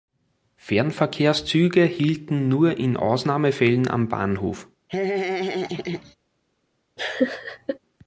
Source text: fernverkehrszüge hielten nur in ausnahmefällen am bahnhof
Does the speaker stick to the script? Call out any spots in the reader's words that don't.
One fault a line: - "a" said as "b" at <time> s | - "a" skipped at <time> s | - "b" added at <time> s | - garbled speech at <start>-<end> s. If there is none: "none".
none